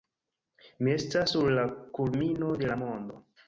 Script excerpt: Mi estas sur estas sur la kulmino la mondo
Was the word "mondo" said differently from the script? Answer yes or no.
no